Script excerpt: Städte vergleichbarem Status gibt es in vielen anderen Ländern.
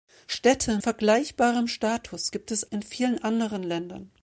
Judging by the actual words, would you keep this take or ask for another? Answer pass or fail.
pass